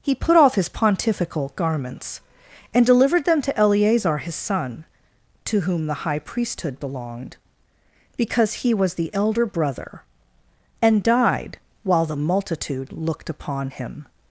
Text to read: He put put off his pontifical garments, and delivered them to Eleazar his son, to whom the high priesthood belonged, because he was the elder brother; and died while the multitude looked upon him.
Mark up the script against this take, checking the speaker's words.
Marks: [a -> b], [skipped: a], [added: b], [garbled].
He put [skipped: put] off his pontifical garments, and delivered them to Eleazar his son, to whom the high priesthood belonged, because he was the elder brother; and died while the multitude looked upon him.